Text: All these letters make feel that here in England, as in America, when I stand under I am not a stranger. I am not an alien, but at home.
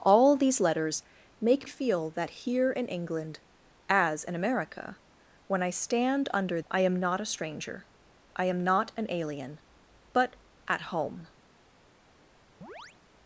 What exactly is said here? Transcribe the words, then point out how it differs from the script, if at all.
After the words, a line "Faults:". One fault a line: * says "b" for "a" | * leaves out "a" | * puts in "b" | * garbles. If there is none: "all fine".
All these letters make feel that here in England, as in America, when I stand under I am not a stranger. I am not an alien, but at home.
Faults:
all fine